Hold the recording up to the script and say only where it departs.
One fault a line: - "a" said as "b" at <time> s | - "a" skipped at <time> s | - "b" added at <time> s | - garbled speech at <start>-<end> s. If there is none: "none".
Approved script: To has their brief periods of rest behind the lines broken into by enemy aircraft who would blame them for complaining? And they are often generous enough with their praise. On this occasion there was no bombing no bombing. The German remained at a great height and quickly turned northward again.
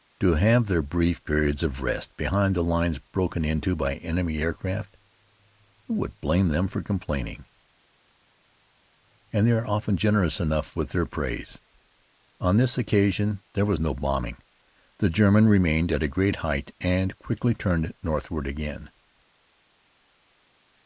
- "has" said as "have" at 0.3 s
- "no bombing" skipped at 14.4 s